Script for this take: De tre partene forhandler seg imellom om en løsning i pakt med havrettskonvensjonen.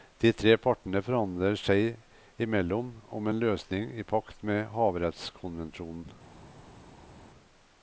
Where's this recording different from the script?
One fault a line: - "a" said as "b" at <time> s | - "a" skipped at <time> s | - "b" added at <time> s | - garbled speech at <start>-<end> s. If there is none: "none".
none